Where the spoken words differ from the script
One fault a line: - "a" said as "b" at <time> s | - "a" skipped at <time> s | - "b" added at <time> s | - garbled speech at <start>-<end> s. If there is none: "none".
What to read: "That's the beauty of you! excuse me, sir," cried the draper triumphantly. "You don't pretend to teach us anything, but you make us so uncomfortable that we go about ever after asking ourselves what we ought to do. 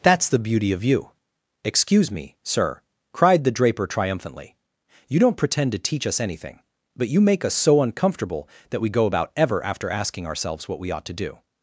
none